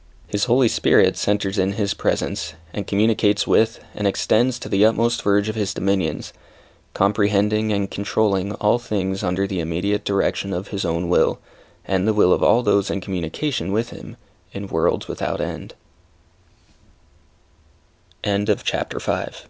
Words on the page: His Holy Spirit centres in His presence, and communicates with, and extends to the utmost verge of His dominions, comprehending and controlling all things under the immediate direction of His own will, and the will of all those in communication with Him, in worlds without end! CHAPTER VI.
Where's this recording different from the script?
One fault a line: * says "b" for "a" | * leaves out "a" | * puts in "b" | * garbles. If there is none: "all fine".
all fine